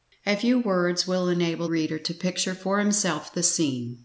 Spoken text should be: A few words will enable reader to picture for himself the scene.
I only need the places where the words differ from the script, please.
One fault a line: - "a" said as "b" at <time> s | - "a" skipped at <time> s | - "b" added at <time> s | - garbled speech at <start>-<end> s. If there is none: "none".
none